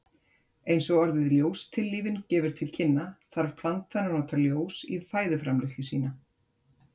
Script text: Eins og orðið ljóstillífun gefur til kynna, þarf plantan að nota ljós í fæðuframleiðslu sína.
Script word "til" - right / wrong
right